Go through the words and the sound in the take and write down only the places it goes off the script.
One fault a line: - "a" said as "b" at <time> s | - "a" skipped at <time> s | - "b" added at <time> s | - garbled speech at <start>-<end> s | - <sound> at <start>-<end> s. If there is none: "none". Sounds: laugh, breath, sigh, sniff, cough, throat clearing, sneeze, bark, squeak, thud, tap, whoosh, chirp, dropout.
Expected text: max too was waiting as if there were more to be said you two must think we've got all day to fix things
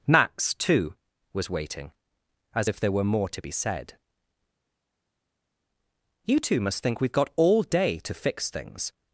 none